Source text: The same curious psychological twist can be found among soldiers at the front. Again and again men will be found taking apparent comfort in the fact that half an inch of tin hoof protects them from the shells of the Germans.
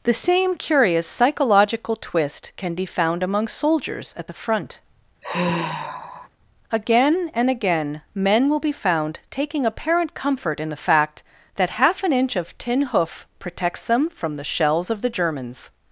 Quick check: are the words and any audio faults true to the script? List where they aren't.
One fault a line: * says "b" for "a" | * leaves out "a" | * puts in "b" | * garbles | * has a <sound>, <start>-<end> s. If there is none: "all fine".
* has a sigh, 5.2-6.3 s